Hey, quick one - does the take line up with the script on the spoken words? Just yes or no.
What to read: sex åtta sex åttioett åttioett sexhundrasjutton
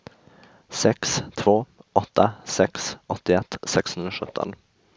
no